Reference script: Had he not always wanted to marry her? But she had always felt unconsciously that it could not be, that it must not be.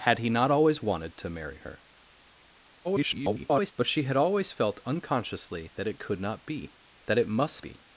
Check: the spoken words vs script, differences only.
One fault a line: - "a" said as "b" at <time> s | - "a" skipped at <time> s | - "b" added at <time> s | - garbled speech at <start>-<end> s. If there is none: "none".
- garbled speech at 2.8-3.7 s
- "not" skipped at 7.6 s